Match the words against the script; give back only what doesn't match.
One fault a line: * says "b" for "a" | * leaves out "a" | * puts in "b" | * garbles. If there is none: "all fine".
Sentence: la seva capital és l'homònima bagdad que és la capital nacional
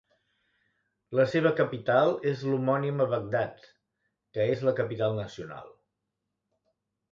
all fine